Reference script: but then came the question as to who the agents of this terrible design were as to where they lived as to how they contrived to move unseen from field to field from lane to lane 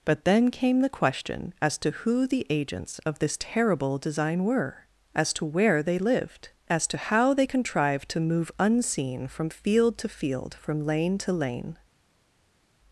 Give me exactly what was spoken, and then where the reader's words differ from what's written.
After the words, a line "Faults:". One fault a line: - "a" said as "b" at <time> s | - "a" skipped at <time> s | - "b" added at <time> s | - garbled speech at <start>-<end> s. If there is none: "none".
but then came the question as to who the agents of this terrible design were as to where they lived as to how they contrived to move unseen from field to field from lane to lane
Faults:
none